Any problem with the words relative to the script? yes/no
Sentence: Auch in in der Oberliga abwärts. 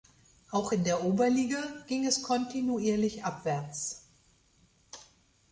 yes